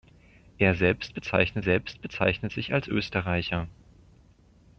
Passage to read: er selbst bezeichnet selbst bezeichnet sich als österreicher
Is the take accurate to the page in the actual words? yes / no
yes